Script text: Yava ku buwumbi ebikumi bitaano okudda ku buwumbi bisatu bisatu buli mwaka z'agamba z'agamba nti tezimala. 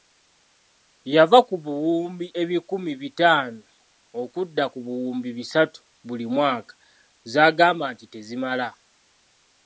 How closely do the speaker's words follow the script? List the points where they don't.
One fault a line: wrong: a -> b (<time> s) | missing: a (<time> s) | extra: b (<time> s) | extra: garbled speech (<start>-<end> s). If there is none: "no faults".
missing: bisatu (5.8 s)
missing: z'agamba (7.9 s)